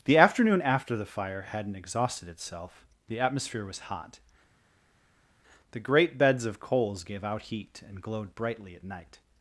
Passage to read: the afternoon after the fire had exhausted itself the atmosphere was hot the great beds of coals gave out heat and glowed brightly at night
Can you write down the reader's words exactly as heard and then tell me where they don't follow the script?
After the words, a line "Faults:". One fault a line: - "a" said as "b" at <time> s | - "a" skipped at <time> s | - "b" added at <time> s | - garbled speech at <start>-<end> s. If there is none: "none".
the afternoon after the fire hadn't exhausted itself the atmosphere was hot the great beds of coals gave out heat and glowed brightly at night
Faults:
- "had" said as "hadn't" at 1.5 s